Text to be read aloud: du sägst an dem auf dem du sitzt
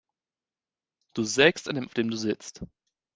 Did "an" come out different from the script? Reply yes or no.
no